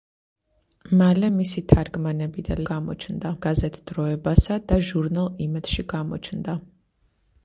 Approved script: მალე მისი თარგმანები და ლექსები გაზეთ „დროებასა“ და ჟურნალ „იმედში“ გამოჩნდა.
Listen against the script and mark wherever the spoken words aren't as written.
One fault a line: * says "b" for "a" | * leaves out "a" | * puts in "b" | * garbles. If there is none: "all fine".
* says "გამოჩნდა" for "ლექსები"